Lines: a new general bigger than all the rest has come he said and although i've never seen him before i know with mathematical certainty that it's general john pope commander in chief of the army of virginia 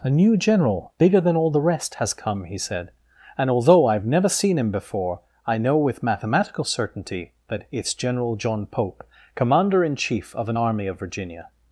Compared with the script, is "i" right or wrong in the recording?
right